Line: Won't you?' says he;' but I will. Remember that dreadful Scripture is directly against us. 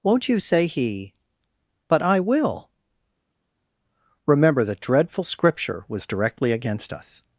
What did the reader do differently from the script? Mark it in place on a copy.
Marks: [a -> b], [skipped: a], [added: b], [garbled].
Won't you?' [says -> say] he;' but I will. Remember that dreadful Scripture [is -> was] directly against us.